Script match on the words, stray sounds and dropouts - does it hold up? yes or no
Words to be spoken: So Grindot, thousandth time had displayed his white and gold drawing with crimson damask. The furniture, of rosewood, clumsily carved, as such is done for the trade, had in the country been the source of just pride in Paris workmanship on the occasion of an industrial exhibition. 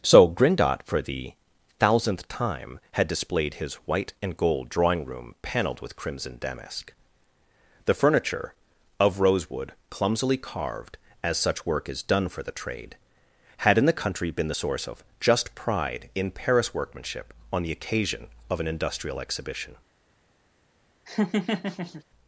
no